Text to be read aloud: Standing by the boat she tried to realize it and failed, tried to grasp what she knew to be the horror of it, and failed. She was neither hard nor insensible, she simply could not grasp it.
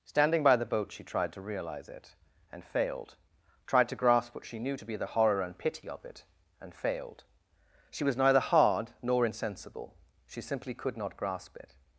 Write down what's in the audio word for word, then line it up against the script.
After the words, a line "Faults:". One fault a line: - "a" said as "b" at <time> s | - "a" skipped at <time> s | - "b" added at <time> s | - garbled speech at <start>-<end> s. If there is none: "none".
Standing by the boat she tried to realize it and failed, tried to grasp what she knew to be the horror and pity of it, and failed. She was neither hard nor insensible, she simply could not grasp it.
Faults:
- "and pity" added at 5.4 s